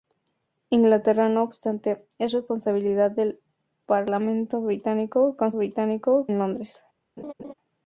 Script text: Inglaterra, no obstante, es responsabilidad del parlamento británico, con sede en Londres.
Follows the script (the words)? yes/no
no